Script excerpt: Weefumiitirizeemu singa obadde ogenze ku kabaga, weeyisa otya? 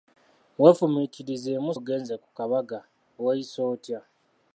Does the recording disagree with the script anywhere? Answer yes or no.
yes